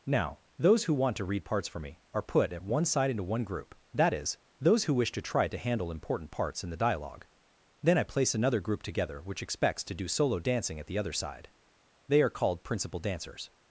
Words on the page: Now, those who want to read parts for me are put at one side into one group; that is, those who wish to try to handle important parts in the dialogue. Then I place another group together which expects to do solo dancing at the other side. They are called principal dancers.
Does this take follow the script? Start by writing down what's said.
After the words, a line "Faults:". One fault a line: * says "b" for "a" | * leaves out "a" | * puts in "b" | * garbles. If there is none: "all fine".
Now, those who want to read parts for me are put at one side into one group; that is, those who wish to try to handle important parts in the dialogue. Then I place another group together which expects to do solo dancing at the other side. They are called principal dancers.
Faults:
all fine